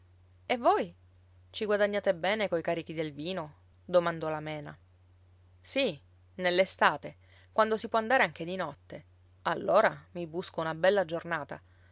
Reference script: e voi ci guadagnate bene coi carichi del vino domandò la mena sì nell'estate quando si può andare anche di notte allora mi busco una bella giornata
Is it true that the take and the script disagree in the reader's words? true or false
false